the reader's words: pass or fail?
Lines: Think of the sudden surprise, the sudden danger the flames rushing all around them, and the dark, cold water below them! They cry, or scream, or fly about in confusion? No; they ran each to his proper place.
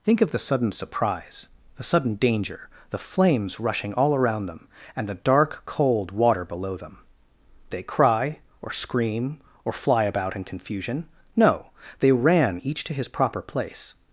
pass